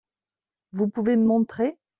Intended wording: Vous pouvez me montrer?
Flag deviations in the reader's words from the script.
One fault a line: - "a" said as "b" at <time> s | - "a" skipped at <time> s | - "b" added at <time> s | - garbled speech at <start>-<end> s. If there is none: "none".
none